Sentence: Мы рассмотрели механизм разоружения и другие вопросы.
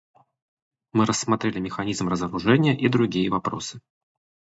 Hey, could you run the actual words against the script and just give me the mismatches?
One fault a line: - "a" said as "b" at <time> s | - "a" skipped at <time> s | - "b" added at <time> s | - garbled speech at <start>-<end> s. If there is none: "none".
none